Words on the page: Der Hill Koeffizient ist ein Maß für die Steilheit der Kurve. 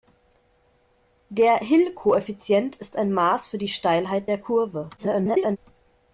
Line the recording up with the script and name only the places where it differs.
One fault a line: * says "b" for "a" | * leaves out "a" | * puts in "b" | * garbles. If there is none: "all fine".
* garbles